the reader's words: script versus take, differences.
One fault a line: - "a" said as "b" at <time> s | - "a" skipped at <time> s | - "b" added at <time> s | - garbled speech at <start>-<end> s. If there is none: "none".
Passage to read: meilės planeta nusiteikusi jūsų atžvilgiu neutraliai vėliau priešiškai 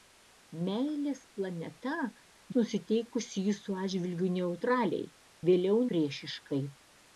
none